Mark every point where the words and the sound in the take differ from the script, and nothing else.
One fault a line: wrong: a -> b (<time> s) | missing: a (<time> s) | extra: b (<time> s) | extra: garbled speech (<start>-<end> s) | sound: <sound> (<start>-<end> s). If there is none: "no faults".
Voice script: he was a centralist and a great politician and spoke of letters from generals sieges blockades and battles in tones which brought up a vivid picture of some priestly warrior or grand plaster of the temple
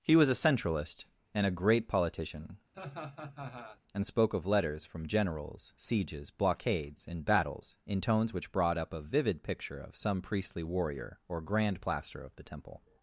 sound: laugh (2.7-3.8 s)